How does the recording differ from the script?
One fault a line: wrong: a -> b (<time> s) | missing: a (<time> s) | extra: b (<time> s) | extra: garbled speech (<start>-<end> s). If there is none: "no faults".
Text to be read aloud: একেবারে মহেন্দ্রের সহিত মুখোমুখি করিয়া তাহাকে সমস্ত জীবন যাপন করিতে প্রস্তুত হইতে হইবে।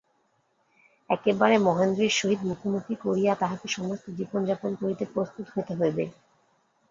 no faults